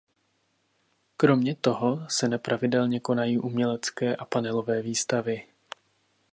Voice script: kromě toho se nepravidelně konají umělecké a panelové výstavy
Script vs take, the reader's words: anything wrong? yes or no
no